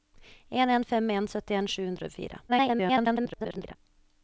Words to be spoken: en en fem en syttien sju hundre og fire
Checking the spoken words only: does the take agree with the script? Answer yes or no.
no